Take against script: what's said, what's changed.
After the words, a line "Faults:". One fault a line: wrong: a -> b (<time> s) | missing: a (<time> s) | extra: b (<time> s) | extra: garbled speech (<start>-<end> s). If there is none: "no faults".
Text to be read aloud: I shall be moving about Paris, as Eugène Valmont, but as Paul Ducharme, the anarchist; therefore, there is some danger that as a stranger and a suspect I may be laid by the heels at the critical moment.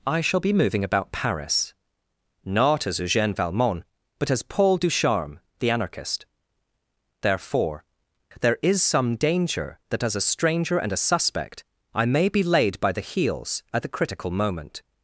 I shall be moving about Paris, not as Eugène Valmont, but as Paul Ducharme, the anarchist; therefore, there is some danger that as a stranger and a suspect I may be laid by the heels at the critical moment.
Faults:
extra: not (2.4 s)